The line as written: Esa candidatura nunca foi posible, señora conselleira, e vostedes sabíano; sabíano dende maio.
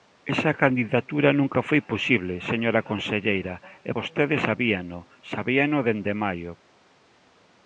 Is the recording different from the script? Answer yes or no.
no